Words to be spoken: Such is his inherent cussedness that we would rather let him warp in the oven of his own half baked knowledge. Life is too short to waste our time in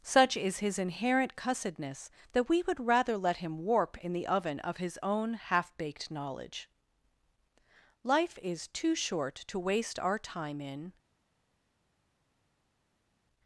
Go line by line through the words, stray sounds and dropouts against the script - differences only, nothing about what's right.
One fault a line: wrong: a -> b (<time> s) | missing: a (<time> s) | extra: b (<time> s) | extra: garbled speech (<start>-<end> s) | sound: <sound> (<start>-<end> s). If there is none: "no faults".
no faults